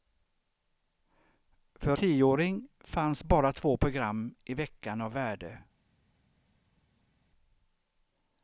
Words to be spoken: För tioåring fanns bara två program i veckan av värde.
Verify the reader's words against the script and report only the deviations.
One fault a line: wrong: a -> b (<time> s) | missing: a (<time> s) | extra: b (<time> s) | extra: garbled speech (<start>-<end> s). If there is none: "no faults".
no faults